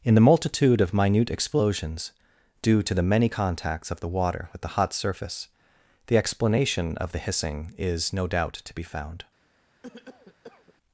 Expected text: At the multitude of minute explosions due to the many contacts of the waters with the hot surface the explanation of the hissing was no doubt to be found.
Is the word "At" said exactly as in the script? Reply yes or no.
no